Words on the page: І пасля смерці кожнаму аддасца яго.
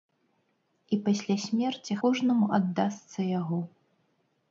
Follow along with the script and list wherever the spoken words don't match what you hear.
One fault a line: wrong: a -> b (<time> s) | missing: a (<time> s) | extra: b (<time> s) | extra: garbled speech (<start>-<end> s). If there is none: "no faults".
no faults